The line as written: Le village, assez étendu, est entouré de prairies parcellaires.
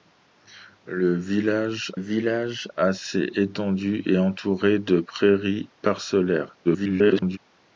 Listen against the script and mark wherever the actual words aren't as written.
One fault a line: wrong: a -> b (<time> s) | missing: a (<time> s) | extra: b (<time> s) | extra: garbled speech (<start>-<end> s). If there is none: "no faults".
extra: village (1.9 s)
extra: garbled speech (6.6-7.4 s)